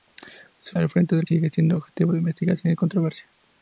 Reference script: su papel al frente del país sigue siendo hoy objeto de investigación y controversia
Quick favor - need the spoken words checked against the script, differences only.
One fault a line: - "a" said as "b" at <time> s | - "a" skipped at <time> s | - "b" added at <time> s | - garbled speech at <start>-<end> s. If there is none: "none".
- "papel" skipped at 0.8 s
- "país" skipped at 1.3 s
- "hoy" skipped at 1.8 s